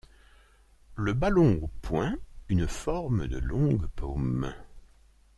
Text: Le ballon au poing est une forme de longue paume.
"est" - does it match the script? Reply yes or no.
no